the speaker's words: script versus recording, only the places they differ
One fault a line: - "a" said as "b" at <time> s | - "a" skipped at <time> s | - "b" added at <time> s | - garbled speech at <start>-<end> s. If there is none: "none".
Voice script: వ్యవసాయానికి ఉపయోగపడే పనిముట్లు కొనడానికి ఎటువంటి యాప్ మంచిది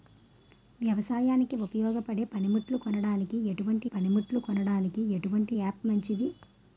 - "పనిముట్లు కొనడానికి ఎటువంటి" added at 3.9 s